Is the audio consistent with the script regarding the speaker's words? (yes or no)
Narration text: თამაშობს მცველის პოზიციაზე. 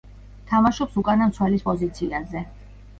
no